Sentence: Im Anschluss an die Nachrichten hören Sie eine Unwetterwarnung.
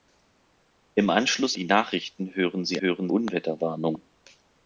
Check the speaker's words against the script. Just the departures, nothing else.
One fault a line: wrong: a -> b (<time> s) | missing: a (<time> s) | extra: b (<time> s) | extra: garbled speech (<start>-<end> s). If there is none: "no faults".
missing: an (1.6 s)
wrong: eine -> hören (2.8 s)